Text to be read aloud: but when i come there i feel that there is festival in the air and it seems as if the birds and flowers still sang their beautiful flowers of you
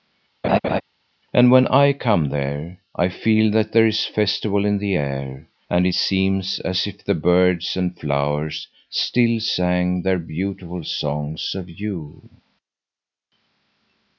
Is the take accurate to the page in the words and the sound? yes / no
no